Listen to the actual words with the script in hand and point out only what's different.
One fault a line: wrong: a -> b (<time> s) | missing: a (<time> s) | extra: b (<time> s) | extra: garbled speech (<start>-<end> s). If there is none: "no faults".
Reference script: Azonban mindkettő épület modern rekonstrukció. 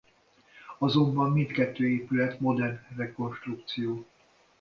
no faults